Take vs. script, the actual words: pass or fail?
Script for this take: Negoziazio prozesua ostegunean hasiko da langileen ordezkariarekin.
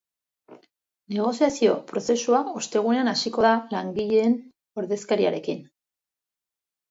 pass